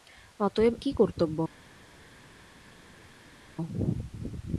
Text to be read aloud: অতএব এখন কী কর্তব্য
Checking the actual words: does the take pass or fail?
fail